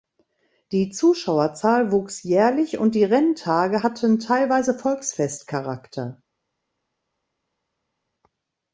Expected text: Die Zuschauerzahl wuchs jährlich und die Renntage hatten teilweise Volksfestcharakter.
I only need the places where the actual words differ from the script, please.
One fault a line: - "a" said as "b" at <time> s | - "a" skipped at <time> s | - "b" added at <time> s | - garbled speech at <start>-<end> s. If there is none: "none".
none